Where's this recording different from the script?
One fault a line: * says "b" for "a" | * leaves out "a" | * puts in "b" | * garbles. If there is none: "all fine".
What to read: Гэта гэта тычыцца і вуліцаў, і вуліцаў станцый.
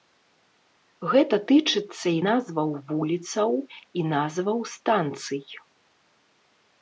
* leaves out "гэта"
* puts in "назваў"
* says "назваў" for "вуліцаў"